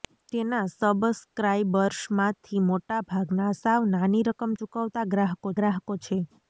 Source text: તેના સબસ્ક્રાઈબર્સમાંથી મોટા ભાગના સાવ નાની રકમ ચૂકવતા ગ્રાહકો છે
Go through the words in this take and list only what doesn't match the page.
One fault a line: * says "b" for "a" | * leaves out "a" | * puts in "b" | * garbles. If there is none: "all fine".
* puts in "ગ્રાહકો"